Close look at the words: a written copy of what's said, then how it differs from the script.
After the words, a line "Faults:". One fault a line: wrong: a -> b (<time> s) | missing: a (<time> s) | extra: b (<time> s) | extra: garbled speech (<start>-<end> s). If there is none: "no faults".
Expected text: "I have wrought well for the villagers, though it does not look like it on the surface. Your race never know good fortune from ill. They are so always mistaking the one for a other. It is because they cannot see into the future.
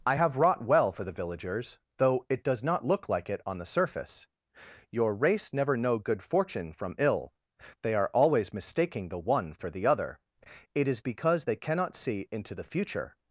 "I have wrought well for the villagers, though it does not look like it on the surface. Your race never know good fortune from ill. They are always mistaking the one for the other. It is because they cannot see into the future.
Faults:
missing: so (8.1 s)
wrong: a -> the (9.7 s)